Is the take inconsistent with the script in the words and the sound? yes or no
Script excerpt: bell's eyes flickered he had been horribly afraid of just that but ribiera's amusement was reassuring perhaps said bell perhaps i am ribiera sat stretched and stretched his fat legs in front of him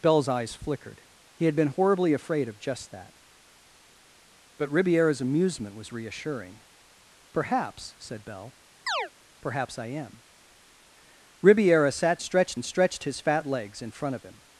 yes